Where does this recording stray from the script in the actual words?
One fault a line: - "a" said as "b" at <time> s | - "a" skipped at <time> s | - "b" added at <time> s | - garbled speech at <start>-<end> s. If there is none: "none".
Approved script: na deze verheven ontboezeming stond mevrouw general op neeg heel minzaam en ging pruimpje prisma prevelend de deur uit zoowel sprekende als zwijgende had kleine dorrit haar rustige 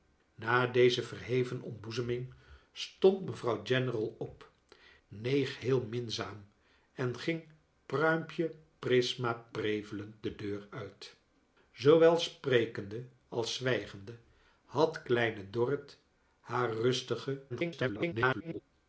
- garbled speech at 17.5-18.6 s